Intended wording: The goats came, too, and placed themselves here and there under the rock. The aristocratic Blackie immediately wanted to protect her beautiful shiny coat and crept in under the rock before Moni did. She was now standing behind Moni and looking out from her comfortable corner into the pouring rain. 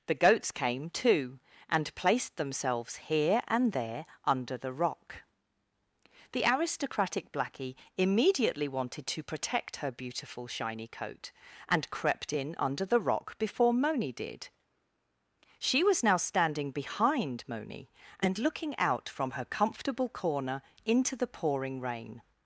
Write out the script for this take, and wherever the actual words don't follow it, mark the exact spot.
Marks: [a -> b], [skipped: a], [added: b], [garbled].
The goats came, too, and placed themselves here and there under the rock. The aristocratic Blackie immediately wanted to protect her beautiful shiny coat and crept in under the rock before Moni did. She was now standing behind Moni and looking out from her comfortable corner into the pouring rain.